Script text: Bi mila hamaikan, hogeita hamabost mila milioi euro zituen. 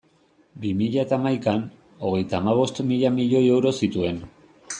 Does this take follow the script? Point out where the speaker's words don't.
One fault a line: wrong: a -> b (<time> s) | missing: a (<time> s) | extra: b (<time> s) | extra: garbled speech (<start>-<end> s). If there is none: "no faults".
extra: eta (1.0 s)